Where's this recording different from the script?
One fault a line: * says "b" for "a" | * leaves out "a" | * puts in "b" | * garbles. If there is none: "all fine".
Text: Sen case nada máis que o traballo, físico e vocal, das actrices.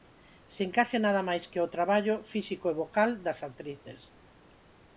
all fine